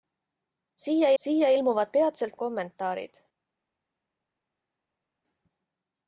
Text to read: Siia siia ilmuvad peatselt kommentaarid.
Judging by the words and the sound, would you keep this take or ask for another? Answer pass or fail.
pass